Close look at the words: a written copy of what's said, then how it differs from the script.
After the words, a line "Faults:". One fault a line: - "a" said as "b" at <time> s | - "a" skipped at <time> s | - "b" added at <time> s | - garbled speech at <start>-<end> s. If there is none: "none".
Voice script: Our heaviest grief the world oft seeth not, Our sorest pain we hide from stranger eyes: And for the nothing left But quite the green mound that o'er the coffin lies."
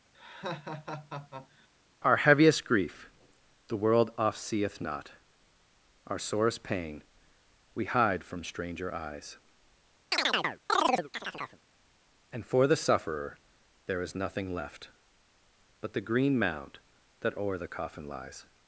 Our heaviest grief the world oft seeth not, Our sorest pain we hide from stranger eyes: And for the sufferer there is nothing left But the green mound that o'er the coffin lies."
Faults:
- "sufferer there is" added at 12.7 s
- "quite" skipped at 15.9 s